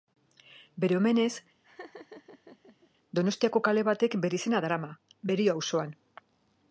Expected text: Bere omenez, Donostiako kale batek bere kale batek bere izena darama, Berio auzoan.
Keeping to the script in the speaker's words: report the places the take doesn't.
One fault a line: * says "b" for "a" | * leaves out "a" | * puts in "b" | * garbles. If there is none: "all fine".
* leaves out "kale batek bere"